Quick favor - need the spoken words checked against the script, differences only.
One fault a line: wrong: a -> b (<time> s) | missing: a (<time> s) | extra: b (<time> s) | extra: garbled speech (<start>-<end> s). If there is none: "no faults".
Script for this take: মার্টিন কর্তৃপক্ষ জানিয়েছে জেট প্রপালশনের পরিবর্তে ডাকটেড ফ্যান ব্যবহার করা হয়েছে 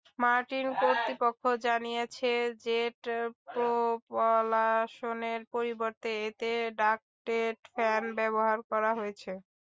extra: এতে (6.3 s)